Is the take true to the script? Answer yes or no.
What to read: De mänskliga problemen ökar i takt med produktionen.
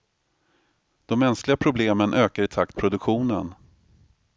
no